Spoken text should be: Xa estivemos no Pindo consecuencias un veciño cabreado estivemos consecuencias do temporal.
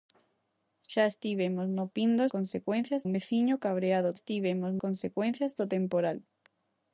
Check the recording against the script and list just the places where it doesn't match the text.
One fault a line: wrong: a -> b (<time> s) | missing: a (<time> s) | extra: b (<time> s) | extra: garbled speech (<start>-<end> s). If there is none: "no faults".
no faults